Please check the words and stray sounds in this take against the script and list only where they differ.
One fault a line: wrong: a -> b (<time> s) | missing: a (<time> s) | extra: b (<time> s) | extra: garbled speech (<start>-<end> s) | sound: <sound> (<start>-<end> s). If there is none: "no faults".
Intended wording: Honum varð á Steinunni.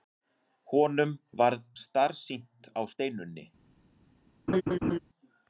extra: starsýnt (1.8 s)
sound: laugh (4.5-5.0 s)